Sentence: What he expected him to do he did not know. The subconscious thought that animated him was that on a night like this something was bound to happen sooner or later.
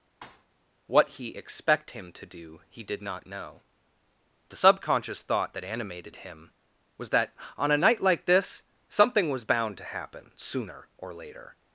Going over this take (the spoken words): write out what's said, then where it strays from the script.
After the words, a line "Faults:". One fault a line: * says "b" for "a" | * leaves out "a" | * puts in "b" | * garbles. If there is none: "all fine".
What he expect him to do he did not know. The subconscious thought that animated him was that on a night like this something was bound to happen sooner or later.
Faults:
* says "expect" for "expected"